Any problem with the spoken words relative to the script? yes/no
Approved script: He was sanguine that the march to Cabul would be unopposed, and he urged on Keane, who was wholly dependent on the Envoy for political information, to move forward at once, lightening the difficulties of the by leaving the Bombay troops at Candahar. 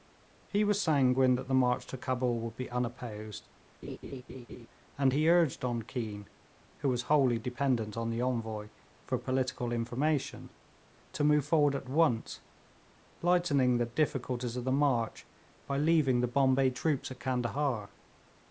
yes